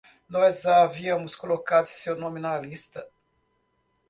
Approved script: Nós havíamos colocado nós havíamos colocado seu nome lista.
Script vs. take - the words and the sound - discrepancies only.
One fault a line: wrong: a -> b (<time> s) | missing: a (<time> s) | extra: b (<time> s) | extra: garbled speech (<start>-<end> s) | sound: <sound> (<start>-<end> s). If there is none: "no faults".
missing: nós havíamos colocado (1.9 s)
extra: na (2.4 s)